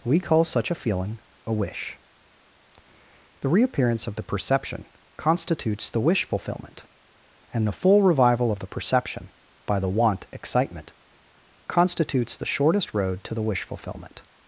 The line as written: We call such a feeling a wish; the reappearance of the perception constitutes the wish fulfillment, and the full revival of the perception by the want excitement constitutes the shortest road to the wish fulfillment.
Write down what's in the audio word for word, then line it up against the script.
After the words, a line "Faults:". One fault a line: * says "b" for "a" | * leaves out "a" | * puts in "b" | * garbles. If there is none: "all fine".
We call such a feeling a wish; the reappearance of the perception constitutes the wish fulfillment, and the full revival of the perception by the want excitement constitutes the shortest road to the wish fulfillment.
Faults:
all fine